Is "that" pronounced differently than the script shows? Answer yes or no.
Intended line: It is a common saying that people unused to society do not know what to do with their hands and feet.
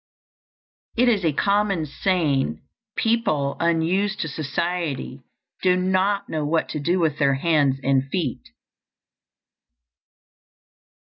yes